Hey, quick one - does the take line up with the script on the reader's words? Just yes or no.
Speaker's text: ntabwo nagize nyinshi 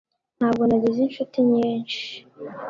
no